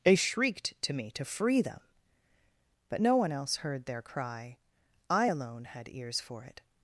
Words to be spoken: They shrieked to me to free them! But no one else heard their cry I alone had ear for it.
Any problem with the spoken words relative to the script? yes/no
yes